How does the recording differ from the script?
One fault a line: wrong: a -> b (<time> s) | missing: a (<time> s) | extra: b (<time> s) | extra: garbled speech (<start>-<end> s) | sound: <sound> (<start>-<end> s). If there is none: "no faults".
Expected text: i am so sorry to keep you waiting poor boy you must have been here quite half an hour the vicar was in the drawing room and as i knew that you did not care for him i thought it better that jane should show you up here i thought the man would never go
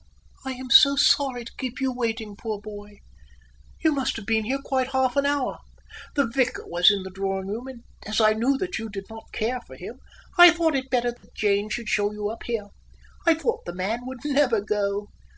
sound: dropout (11.2-11.2 s)